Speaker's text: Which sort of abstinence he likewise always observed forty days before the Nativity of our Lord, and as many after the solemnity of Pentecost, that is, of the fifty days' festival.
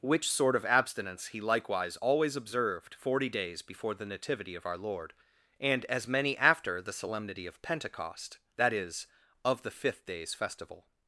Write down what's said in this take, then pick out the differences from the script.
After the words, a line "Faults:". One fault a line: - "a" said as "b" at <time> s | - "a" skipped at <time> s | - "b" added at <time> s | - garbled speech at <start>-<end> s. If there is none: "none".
Which sort of abstinence he likewise always observed forty days before the Nativity of our Lord, and as many after the solemnity of Pentecost, that is, of the fifth days' festival.
Faults:
- "fifty" said as "fifth" at 9.7 s